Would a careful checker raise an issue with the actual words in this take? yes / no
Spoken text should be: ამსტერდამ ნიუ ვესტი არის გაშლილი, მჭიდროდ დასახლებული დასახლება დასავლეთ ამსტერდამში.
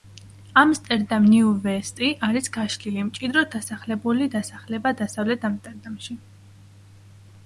no